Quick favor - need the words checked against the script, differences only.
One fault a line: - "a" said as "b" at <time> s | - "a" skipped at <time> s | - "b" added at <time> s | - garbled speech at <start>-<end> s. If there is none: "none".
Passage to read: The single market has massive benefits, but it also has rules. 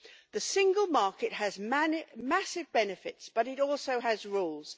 none